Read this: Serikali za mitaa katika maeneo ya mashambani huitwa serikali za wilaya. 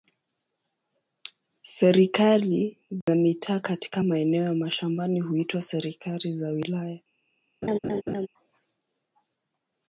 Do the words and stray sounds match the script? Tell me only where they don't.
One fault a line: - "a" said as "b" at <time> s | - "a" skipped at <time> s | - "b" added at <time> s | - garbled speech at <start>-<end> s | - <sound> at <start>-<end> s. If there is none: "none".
- dropout at 3.0-3.1 s
- laugh at 7.6-8.3 s